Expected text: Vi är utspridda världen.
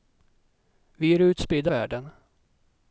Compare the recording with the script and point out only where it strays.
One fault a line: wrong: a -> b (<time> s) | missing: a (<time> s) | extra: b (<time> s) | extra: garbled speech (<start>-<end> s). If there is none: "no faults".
no faults